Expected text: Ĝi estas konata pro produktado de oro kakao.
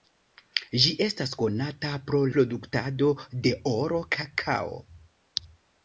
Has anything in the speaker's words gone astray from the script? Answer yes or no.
no